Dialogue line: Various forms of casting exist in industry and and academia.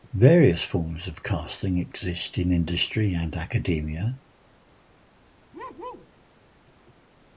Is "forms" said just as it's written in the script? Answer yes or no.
yes